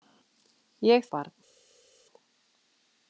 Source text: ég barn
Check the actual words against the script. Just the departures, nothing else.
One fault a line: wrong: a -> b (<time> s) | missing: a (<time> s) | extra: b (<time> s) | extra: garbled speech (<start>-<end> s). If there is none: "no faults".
no faults